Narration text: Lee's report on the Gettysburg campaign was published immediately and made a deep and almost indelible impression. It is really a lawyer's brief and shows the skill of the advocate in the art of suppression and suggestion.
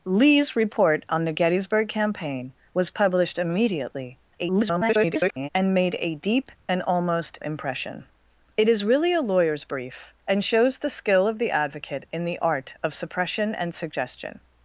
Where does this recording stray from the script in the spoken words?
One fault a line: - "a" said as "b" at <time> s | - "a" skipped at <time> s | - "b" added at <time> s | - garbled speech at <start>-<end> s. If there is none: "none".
- garbled speech at 4.4-5.5 s
- "indelible" skipped at 7.4 s